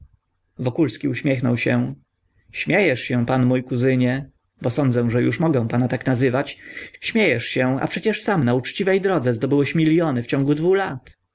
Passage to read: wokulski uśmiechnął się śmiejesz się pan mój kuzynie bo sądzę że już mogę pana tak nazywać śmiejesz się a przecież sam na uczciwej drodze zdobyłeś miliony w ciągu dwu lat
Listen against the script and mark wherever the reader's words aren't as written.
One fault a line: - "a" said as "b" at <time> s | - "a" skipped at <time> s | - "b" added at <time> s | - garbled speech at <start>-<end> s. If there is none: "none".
none